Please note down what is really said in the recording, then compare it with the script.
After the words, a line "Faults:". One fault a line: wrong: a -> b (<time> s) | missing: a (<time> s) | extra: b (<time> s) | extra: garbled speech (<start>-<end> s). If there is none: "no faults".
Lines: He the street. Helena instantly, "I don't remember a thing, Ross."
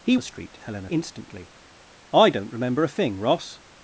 He the street. Helena instantly, "I don't remember a thing, Ross."
Faults:
no faults